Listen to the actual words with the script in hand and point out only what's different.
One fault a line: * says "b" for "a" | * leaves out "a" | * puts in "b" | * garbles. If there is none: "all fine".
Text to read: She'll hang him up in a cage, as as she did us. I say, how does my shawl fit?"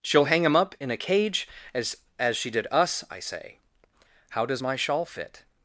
all fine